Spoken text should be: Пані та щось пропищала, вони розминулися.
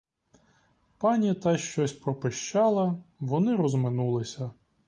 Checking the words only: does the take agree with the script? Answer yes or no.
yes